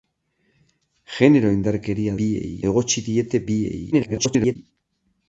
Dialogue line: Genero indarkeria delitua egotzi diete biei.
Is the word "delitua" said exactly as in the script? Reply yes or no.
no